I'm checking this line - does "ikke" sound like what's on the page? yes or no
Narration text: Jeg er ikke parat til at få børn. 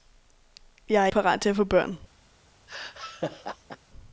no